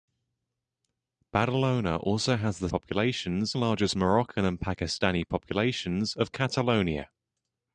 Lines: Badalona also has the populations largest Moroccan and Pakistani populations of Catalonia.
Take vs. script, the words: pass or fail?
pass